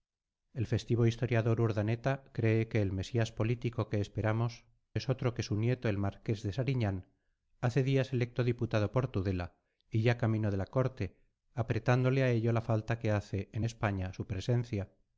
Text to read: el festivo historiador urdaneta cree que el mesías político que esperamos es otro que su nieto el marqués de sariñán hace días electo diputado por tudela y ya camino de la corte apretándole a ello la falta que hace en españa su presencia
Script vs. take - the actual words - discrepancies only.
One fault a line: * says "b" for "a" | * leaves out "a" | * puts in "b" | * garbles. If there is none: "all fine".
all fine